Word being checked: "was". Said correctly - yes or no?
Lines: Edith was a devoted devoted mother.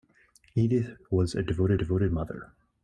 yes